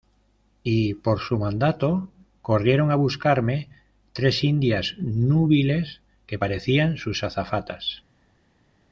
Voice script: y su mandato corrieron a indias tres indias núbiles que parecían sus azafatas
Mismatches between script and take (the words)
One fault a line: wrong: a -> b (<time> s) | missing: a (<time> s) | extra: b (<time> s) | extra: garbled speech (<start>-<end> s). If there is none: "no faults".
extra: por (0.9 s)
wrong: indias -> buscarme (3.0 s)